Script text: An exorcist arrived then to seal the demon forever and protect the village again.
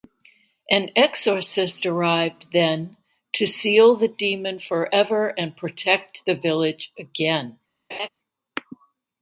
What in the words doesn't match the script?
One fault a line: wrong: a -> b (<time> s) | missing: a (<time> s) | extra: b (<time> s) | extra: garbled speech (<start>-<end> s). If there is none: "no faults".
no faults